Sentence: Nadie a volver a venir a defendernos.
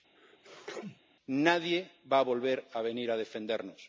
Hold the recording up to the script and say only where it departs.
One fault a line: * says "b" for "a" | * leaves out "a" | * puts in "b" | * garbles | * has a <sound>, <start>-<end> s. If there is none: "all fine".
* has a sneeze, 0.1-1.0 s
* puts in "va"